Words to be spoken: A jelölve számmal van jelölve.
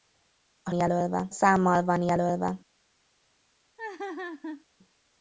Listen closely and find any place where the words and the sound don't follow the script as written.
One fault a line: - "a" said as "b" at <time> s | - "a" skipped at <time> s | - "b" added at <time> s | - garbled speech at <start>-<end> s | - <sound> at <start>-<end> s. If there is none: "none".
- laugh at 3.8-4.6 s